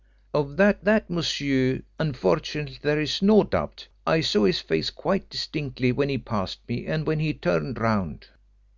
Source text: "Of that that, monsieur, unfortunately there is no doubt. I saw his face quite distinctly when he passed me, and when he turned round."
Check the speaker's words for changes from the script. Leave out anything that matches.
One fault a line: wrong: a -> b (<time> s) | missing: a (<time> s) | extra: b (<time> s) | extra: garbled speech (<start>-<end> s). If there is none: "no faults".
no faults